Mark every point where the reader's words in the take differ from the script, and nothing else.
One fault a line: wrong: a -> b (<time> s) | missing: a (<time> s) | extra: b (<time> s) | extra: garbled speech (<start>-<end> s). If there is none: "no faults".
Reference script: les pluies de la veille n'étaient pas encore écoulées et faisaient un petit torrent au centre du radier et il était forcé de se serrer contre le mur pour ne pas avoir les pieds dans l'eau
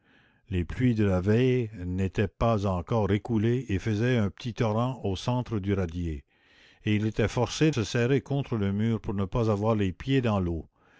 missing: de (7.7 s)